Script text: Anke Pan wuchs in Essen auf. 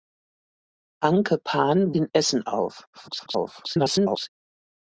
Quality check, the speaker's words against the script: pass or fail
fail